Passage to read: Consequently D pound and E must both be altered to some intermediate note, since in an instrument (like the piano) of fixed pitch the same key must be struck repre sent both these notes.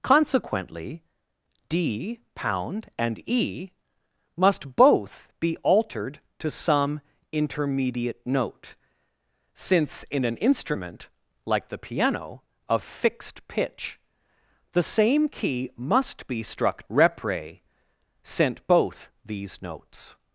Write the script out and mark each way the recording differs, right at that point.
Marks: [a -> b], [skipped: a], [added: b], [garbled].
Consequently D pound and E must both be altered to some intermediate note, since in an instrument (like the piano) of fixed pitch the same key must be struck repre sent both these notes.